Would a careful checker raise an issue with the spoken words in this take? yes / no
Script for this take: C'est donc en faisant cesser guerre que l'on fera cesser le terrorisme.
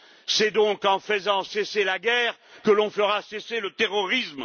yes